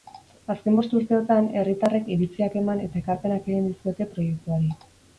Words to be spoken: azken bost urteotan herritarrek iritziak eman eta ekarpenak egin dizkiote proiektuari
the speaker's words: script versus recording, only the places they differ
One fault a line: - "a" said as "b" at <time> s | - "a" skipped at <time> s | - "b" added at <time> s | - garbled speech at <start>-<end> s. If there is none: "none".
none